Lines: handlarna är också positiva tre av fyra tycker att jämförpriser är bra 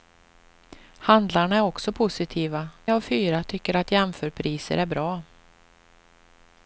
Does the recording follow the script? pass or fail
fail